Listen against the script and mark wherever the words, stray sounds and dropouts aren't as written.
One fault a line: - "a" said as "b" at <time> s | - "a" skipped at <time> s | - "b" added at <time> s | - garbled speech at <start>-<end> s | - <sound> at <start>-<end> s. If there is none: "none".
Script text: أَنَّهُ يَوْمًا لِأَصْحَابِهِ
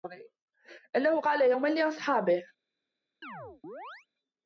- "قَالَ" added at 1.2 s
- chirp at 3.2-4.1 s